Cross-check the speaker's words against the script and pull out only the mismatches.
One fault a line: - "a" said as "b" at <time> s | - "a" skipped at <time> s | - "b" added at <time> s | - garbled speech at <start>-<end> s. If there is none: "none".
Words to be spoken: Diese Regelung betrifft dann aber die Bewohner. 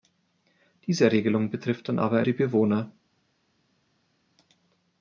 none